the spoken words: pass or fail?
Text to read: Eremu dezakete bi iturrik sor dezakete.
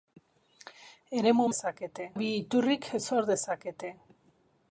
pass